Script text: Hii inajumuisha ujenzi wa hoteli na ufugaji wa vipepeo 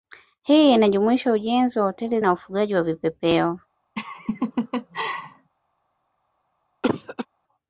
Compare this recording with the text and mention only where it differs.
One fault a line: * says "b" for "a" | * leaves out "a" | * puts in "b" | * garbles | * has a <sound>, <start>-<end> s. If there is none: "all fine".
* has a laugh, 4.0-5.5 s
* has a cough, 6.8-7.3 s